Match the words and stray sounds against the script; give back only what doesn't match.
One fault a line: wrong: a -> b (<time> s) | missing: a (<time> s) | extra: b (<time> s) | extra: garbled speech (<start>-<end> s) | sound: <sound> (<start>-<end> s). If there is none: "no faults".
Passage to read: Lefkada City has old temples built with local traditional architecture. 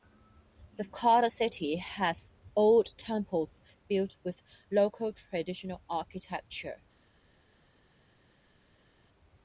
no faults